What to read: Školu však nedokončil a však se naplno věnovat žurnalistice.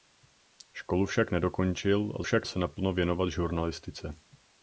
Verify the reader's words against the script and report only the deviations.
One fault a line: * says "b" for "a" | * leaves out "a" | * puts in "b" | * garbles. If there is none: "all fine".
all fine